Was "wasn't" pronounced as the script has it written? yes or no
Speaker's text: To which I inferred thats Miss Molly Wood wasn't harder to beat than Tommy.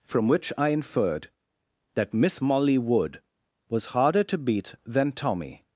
no